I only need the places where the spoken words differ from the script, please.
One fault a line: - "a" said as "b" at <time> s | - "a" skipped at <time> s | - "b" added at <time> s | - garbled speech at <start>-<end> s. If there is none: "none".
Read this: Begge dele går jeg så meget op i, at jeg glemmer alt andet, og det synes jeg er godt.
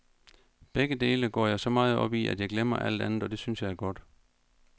none